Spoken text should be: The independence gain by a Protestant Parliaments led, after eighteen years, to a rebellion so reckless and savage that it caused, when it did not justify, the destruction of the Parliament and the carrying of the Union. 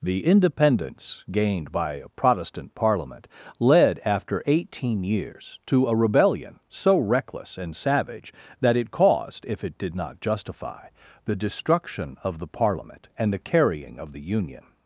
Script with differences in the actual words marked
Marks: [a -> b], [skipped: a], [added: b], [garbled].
The independence [gain -> gained] by a Protestant [Parliaments -> Parliament] led, after eighteen years, to a rebellion so reckless and savage that it caused, [when -> if] it did not justify, the destruction of the Parliament and the carrying of the Union.